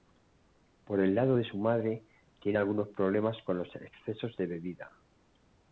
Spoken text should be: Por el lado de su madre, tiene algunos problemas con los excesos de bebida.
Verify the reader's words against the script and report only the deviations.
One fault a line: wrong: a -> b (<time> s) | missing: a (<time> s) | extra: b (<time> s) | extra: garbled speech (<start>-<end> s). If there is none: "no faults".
no faults